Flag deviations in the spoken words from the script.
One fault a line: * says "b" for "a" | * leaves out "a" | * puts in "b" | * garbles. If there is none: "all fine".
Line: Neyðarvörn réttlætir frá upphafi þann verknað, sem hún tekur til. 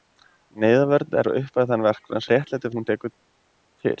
* leaves out "réttlætir"
* says "réttlætir" for "sem"